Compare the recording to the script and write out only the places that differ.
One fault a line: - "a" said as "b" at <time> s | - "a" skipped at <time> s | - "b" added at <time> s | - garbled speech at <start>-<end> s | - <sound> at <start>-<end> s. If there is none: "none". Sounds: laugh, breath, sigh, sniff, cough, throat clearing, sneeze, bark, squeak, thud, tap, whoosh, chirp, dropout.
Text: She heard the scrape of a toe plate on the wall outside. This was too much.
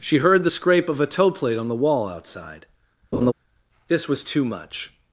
- laugh at 3.1-3.3 s